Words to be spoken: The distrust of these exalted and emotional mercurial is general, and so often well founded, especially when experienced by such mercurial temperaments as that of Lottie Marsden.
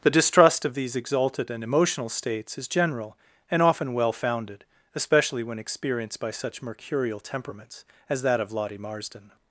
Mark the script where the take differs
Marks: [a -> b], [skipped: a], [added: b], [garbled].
The distrust of these exalted and emotional [mercurial -> states] is general, and [skipped: so] often well founded, especially when experienced by such mercurial temperaments as that of Lottie Marsden.